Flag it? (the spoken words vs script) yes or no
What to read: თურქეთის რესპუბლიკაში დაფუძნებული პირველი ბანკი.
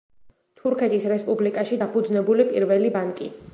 no